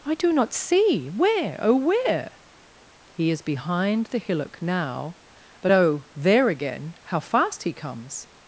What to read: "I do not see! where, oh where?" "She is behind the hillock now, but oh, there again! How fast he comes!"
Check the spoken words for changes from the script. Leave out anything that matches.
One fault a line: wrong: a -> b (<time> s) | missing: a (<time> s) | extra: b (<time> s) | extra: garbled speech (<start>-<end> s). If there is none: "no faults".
wrong: She -> He (3.1 s)